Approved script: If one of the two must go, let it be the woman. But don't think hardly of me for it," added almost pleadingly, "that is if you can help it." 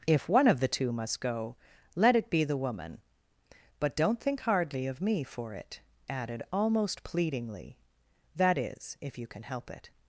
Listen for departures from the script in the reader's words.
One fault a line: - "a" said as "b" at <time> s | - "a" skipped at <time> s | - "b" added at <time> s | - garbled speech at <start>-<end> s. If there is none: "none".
none